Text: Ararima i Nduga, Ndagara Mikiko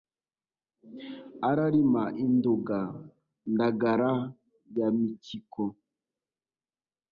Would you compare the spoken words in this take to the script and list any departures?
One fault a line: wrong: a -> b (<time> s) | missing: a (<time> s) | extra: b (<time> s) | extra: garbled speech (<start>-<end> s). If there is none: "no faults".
extra: ya (4.8 s)